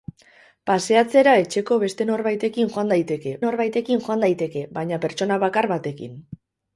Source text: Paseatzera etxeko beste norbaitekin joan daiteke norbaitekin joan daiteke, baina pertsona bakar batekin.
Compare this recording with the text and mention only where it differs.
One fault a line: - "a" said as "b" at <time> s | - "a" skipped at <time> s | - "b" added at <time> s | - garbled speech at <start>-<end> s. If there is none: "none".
none